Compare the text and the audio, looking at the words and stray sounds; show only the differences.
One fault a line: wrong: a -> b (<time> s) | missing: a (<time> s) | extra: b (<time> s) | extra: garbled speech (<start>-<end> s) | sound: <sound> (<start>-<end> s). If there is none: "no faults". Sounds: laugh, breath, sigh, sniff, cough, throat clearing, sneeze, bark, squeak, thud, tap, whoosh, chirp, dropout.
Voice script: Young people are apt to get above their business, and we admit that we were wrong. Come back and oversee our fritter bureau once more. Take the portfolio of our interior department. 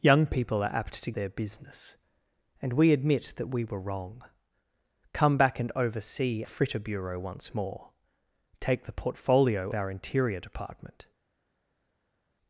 missing: get above (1.1 s)
missing: our (6.4 s)
missing: of (9.7 s)